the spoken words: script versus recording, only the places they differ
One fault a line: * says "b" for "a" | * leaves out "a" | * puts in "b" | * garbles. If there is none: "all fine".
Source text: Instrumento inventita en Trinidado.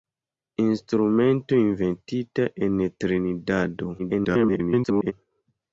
* garbles